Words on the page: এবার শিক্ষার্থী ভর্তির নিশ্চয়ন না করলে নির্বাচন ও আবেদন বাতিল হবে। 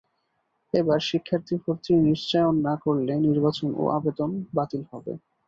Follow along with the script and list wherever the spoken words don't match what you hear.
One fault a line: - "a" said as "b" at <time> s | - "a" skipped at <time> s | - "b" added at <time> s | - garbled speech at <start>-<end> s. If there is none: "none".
none